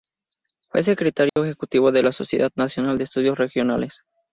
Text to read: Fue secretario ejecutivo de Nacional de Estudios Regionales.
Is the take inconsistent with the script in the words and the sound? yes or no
yes